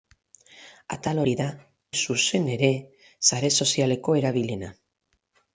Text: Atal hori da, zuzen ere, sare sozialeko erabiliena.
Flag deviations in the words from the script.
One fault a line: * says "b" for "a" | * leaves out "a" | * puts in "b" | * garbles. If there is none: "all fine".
all fine